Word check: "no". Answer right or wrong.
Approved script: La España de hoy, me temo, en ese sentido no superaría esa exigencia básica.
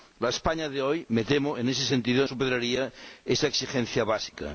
wrong